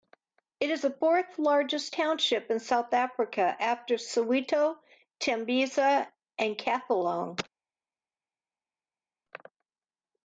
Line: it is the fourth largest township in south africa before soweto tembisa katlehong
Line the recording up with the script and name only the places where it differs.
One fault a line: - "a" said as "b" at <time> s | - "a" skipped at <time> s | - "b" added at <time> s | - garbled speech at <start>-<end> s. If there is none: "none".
- "before" said as "after" at 3.4 s
- "and" added at 6.4 s